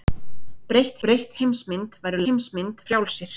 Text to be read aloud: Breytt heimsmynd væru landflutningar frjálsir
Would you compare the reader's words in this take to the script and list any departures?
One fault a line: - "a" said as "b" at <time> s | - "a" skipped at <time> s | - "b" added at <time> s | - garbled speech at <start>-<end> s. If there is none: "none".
- "breytt" added at 1.0 s
- "landflutningar" said as "heimsmynd" at 2.2 s